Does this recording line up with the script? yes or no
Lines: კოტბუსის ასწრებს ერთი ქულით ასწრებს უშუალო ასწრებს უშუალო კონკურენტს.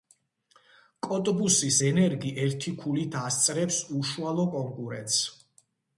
no